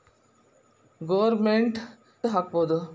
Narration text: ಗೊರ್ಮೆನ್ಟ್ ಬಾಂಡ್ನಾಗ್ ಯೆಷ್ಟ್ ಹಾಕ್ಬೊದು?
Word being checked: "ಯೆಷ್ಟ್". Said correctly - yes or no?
no